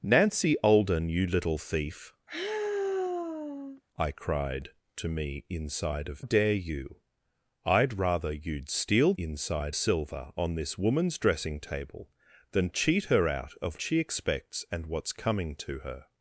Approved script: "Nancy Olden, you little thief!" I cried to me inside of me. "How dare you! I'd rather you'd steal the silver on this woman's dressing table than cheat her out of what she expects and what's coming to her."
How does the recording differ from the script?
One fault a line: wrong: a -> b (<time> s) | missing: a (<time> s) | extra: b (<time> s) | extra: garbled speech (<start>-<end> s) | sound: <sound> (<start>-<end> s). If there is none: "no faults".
sound: sigh (2.3-3.8 s)
missing: me How (6.2 s)
wrong: the -> inside (9.2 s)
missing: what (13.8 s)